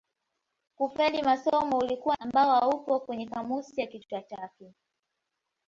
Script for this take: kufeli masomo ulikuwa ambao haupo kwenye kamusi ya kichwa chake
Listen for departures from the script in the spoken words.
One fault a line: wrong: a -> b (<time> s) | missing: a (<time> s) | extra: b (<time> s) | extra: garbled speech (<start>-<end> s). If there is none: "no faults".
no faults